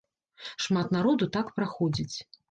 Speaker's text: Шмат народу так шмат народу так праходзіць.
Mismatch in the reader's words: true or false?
true